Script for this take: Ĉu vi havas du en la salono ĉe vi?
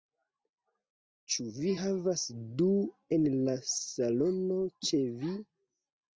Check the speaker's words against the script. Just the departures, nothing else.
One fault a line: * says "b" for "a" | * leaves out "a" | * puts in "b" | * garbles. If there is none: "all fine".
all fine